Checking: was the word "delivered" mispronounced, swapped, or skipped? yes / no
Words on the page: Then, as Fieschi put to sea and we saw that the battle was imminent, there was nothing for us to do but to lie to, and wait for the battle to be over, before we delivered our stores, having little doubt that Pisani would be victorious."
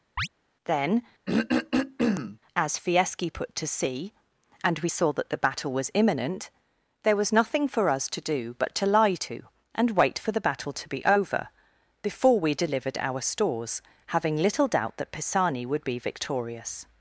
no